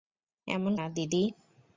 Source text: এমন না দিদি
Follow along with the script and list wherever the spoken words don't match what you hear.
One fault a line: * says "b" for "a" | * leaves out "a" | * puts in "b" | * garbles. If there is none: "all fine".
all fine